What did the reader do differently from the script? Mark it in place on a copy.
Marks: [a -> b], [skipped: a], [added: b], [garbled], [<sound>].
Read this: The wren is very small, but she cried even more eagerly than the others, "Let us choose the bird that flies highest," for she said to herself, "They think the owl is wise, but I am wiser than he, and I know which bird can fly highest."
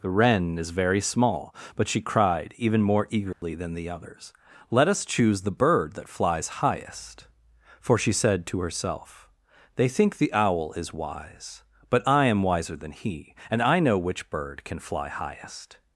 The wren is very small, but she cried even more eagerly [dropout] than the others, "Let us choose the bird that flies highest," for she said to herself, "They think the owl is wise, but I am wiser than he, and I know which bird can fly highest."